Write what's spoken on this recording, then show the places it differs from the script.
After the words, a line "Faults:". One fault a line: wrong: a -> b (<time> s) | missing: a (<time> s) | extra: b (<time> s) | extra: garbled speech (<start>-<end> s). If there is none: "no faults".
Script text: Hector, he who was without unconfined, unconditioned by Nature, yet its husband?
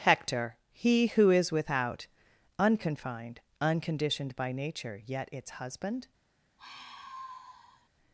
Hector, he who is without unconfined, unconditioned by Nature, yet its husband?
Faults:
wrong: was -> is (1.3 s)